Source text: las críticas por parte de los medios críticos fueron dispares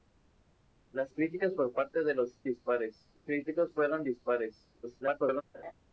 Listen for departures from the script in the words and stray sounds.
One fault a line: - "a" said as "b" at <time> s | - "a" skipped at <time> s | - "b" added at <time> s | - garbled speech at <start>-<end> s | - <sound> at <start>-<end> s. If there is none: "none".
- "medios" said as "dispares" at 2.4 s
- garbled speech at 4.8-5.4 s
- laugh at 5.5-5.7 s